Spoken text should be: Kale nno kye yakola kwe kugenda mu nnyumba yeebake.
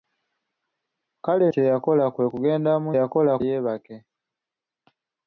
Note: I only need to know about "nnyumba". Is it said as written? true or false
false